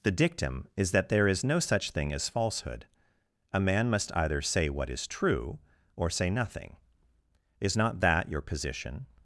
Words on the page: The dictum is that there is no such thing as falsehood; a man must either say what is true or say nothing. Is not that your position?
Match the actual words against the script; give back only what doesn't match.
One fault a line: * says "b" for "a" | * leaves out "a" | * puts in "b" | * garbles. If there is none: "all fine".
all fine